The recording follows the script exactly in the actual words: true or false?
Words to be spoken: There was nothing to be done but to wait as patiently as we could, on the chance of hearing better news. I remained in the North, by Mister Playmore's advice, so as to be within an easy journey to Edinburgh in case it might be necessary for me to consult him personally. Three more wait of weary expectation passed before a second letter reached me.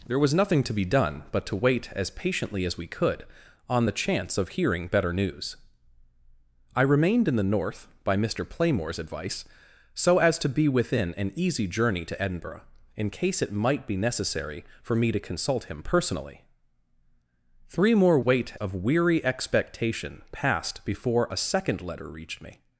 true